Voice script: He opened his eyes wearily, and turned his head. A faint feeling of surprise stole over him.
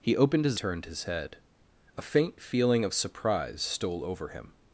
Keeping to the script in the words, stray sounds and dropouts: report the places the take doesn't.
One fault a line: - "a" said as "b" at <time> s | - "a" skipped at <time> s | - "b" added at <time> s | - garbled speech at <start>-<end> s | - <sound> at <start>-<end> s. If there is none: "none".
- "eyes wearily and" skipped at 0.6 s